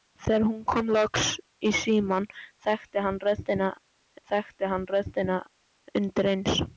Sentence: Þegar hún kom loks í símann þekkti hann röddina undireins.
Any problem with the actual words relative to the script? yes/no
yes